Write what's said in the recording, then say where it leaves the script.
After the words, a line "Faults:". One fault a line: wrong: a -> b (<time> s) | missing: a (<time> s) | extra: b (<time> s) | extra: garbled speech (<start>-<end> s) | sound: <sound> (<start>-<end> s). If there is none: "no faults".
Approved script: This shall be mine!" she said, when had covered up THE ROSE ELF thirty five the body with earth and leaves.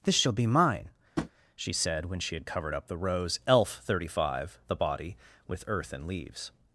This shall be mine!" she said, when she had covered up THE ROSE ELF thirty five the body with earth and leaves.
Faults:
sound: tap (1.2-1.3 s)
extra: she (2.2 s)